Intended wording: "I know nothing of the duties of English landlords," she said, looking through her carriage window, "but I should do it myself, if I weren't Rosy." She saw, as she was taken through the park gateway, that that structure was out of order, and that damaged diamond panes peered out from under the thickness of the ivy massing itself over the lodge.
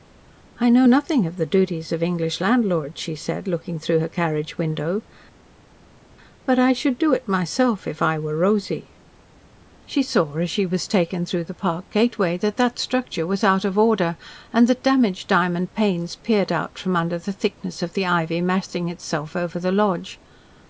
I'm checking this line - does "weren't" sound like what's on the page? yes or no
no